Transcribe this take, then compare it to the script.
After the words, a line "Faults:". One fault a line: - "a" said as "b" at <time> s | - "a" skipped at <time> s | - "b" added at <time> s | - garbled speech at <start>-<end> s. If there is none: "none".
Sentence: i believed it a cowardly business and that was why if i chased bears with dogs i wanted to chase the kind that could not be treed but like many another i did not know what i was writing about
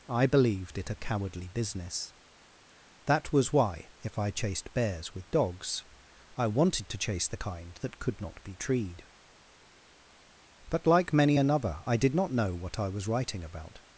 i believed it a cowardly business that was why if i chased bears with dogs i wanted to chase the kind that could not be treed but like many another i did not know what i was writing about
Faults:
- "and" skipped at 2.1 s